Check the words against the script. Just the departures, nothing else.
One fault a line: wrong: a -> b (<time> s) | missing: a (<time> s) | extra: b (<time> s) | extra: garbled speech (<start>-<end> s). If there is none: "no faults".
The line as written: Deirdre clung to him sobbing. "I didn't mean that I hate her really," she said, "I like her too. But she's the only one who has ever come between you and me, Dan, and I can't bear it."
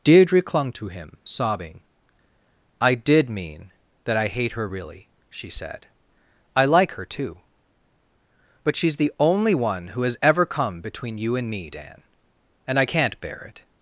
wrong: didn't -> did (3.0 s)